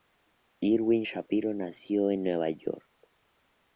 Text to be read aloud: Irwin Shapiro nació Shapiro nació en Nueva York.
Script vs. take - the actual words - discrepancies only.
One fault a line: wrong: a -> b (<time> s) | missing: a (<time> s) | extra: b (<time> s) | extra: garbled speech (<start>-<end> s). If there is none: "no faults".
missing: Shapiro nació (2.1 s)